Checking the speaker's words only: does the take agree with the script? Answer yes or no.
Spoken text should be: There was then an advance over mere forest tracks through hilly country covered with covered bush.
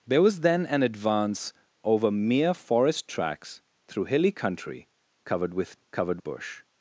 yes